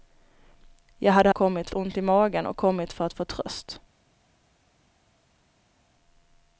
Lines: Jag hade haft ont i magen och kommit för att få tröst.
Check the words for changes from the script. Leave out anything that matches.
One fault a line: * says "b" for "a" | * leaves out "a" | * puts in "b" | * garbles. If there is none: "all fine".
* says "kommit" for "haft"